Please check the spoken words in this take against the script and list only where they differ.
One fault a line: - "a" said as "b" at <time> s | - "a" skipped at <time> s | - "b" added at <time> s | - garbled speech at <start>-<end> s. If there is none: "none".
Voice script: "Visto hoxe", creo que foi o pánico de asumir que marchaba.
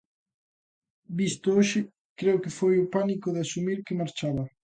none